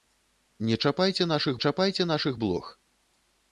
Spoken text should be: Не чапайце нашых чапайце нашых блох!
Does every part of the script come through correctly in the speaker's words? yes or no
yes